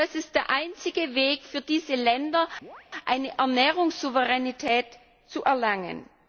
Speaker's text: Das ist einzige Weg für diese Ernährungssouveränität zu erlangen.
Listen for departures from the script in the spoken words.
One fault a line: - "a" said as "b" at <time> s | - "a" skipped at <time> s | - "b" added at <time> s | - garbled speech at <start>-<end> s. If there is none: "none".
- "der" added at 0.3 s
- "Länder eine" added at 1.9 s